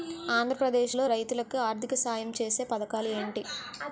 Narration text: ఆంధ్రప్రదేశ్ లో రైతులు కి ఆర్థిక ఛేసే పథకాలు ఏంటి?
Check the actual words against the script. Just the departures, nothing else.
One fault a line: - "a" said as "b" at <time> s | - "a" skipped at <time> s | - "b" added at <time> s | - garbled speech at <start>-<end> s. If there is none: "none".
- "సాయం" added at 2.0 s